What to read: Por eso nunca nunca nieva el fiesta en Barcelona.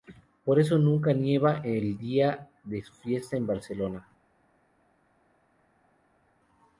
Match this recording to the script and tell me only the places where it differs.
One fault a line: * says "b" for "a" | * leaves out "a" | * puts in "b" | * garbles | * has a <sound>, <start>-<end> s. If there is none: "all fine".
* leaves out "nunca"
* puts in "día de su"